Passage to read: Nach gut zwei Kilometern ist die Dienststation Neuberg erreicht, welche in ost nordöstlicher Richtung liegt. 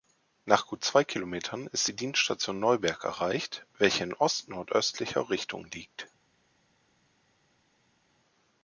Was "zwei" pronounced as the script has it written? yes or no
yes